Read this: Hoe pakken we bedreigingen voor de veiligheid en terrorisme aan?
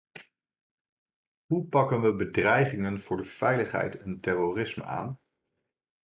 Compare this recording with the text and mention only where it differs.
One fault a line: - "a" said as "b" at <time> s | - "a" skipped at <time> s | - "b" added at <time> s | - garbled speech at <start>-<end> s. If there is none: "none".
none